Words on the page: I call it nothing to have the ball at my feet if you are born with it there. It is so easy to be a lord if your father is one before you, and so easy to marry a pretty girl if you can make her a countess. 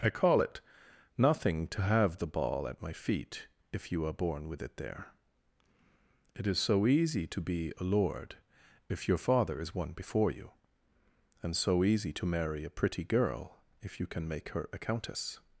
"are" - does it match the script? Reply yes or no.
yes